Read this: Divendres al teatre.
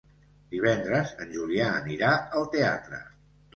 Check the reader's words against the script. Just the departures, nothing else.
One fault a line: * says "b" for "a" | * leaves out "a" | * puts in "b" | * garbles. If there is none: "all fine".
* puts in "en Julià anirà"